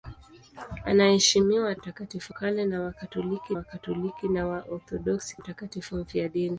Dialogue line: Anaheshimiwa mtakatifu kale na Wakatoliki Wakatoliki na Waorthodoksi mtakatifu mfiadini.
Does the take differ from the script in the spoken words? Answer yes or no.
no